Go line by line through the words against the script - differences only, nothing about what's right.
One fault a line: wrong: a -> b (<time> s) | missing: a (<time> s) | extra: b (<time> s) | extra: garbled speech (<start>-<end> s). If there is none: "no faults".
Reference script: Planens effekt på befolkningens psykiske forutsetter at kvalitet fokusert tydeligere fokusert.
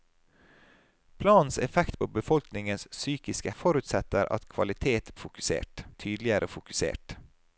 no faults